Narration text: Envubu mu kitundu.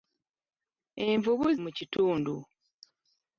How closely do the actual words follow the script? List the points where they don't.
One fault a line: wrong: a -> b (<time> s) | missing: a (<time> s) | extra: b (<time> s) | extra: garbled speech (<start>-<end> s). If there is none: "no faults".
no faults